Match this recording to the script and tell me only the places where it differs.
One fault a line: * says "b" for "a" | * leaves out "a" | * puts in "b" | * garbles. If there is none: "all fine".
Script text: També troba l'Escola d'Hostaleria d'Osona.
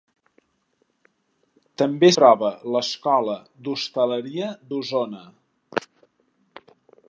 all fine